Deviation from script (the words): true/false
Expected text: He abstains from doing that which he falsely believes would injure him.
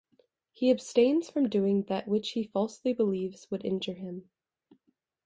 false